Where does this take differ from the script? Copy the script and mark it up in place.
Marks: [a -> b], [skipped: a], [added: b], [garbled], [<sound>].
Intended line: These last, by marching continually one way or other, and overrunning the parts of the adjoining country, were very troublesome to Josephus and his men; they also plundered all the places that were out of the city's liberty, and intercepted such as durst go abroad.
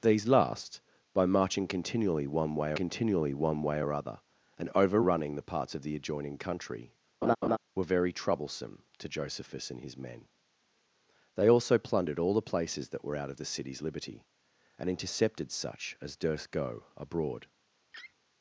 These last, by marching continually one way [added: continually one way] or other, and overrunning the parts of the adjoining country, [laugh] were very troublesome to Josephus and his men; they also plundered all the places that were out of the city's liberty, and intercepted such as durst go abroad. [laugh]